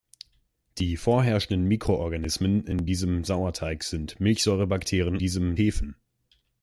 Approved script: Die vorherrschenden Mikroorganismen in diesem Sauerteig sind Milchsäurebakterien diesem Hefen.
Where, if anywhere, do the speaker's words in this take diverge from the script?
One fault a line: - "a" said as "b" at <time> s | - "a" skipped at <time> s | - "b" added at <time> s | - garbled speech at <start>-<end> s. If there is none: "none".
none